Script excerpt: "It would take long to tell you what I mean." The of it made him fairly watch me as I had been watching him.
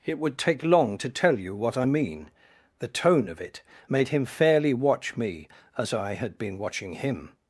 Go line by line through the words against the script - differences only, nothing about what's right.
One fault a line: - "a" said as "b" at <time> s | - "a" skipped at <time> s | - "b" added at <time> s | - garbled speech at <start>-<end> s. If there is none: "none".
- "tone" added at 2.9 s